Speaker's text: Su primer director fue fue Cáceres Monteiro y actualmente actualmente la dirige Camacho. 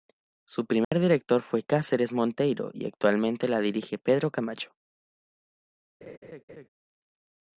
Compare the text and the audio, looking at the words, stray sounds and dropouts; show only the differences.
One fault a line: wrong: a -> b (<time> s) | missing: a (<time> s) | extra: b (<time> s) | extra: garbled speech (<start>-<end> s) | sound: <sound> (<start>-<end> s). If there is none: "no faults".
sound: dropout (0.8-0.9 s)
missing: fue (1.6 s)
missing: actualmente (3.5 s)
extra: Pedro (4.0 s)
sound: laugh (6.0-6.7 s)